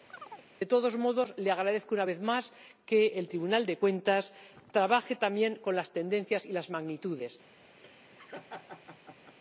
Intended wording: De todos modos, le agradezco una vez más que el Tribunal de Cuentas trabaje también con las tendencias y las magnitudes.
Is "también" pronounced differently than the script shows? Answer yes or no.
no